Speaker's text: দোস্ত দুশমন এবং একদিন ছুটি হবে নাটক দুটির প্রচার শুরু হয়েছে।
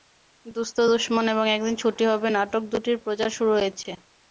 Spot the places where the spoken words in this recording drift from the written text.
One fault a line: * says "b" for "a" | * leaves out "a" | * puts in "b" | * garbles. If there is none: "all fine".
all fine